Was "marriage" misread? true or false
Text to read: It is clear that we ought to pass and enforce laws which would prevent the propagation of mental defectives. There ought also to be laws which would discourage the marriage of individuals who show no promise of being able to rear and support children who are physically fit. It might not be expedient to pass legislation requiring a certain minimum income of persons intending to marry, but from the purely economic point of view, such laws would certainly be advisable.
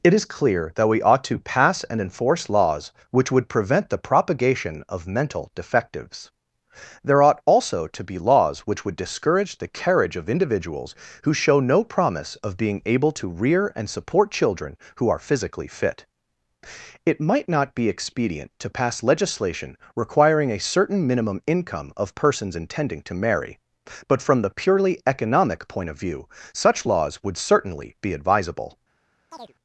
true